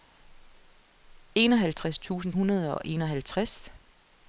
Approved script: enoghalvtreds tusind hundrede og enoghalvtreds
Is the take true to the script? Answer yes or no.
yes